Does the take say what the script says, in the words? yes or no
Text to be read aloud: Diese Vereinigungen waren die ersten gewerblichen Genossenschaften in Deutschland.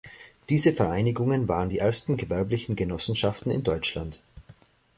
yes